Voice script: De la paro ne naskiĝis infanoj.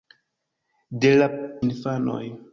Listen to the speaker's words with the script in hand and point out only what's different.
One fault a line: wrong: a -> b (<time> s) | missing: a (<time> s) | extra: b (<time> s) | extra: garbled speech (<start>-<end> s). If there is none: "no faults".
missing: paro ne naskiĝis (1.3 s)